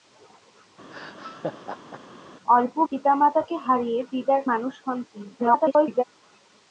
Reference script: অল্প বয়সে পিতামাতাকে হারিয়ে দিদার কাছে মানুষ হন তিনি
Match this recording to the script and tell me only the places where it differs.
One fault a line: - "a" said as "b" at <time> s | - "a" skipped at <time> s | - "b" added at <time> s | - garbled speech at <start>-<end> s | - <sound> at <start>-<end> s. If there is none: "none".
- laugh at 0.9-2.0 s
- "বয়সে" skipped at 2.7 s
- "কাছে" skipped at 4.4 s
- garbled speech at 5.4-6.0 s